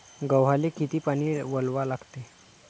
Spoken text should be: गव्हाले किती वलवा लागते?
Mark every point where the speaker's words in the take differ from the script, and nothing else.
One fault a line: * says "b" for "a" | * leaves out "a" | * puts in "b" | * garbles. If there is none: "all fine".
* puts in "पानी"